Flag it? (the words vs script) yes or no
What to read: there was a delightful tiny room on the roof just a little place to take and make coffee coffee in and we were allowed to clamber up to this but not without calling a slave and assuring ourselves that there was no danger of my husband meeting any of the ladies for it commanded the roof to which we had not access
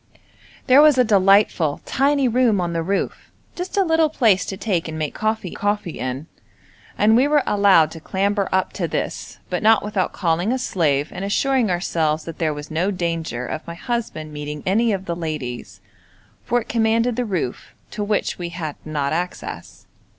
no